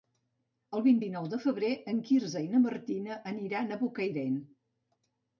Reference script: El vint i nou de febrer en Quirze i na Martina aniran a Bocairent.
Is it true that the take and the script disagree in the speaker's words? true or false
false